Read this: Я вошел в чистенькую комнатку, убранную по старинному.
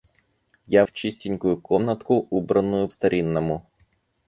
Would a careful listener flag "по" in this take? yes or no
yes